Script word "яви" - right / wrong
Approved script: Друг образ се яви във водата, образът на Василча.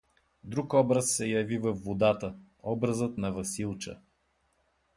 right